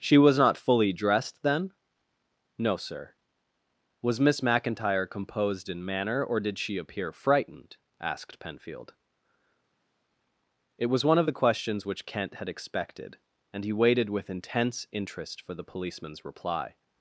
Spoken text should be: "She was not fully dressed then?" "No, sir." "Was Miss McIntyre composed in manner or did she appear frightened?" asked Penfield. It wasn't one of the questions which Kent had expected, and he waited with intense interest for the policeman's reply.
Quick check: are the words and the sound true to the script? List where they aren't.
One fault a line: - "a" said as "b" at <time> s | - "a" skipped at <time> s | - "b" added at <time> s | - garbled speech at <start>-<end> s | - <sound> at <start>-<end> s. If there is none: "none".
- "wasn't" said as "was" at 10.9 s